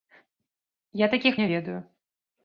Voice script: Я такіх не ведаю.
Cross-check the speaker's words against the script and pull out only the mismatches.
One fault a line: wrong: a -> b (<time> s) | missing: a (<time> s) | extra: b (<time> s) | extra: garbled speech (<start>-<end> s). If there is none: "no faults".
no faults